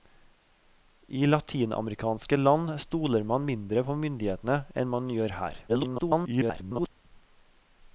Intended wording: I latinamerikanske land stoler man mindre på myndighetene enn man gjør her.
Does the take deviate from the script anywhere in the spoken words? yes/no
yes